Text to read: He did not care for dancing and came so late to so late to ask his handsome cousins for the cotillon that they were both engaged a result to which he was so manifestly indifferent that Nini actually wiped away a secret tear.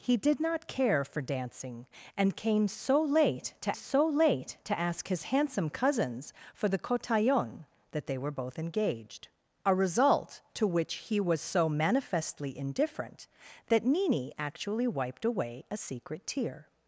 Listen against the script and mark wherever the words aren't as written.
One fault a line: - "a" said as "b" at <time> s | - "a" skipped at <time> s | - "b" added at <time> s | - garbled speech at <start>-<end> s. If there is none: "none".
none